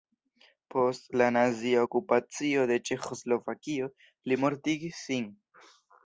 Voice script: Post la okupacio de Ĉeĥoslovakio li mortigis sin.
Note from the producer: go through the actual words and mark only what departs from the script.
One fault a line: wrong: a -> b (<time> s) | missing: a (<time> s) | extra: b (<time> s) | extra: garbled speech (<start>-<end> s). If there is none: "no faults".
extra: nazia (1.4 s)